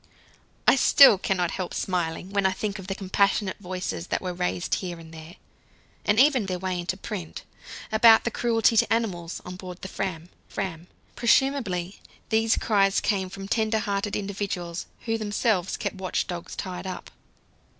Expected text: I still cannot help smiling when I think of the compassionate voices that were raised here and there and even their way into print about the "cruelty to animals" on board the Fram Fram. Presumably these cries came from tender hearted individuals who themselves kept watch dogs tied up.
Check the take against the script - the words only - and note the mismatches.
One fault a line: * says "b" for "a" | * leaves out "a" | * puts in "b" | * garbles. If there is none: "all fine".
all fine